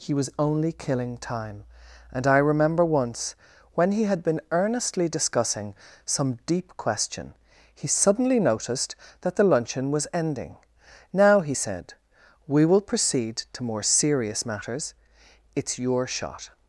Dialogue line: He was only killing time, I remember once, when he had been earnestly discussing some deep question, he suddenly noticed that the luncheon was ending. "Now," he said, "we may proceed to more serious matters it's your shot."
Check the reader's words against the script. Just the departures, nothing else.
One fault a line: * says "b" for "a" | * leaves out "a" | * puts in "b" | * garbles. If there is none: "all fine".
* puts in "and"
* says "will" for "may"